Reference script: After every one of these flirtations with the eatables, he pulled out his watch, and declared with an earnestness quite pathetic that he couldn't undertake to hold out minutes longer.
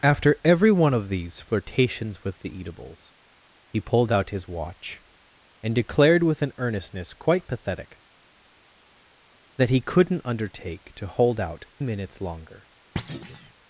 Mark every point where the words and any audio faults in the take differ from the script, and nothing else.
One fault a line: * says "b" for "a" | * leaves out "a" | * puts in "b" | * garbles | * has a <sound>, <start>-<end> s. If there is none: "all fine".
* has a thud, 13.0-13.5 s